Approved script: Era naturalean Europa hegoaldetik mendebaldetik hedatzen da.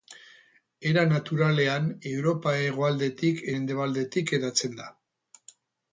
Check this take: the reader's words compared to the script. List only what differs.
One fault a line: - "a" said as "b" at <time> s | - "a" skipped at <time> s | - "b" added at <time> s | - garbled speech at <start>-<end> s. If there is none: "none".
none